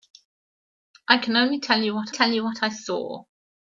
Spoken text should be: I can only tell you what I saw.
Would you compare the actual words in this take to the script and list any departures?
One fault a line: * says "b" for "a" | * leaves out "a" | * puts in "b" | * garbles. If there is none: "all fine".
* puts in "tell you what"